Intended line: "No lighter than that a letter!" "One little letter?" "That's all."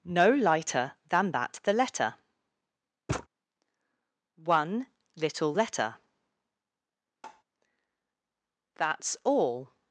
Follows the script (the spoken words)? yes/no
no